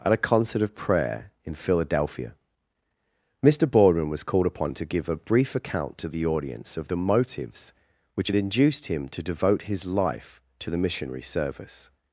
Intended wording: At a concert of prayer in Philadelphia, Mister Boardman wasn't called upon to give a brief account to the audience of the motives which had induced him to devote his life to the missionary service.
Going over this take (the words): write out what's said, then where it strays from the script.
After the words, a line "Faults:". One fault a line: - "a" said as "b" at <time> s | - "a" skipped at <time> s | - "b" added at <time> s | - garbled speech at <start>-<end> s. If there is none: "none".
At a concert of prayer in Philadelphia, Mister Boardman was called upon to give a brief account to the audience of the motives which had induced him to devote his life to the missionary service.
Faults:
- "wasn't" said as "was" at 4.1 s